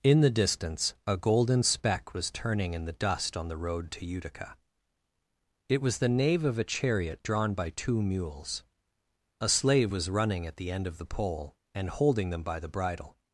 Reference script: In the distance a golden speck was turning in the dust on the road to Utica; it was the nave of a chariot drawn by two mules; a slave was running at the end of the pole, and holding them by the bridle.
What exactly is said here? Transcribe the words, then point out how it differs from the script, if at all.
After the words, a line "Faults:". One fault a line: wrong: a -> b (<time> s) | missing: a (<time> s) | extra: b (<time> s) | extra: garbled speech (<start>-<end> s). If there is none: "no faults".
In the distance a golden speck was turning in the dust on the road to Utica; it was the nave of a chariot drawn by two mules; a slave was running at the end of the pole, and holding them by the bridle.
Faults:
no faults